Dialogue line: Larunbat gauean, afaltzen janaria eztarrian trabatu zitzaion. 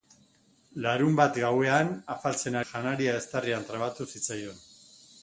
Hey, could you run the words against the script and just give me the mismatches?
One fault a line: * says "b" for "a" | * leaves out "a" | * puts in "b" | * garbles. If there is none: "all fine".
all fine